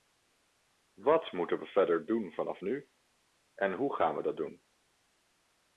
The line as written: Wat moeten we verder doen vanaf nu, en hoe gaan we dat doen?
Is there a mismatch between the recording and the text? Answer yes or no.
no